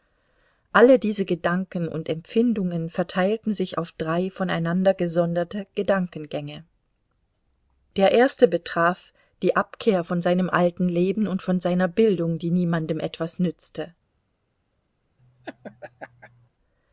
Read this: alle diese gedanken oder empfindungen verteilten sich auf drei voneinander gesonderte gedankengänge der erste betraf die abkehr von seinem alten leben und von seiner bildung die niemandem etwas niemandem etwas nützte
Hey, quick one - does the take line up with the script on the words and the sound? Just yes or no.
no